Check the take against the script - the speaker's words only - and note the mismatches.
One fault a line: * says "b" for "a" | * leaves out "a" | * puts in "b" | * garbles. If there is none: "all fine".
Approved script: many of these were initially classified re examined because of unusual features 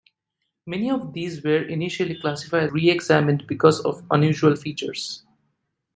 all fine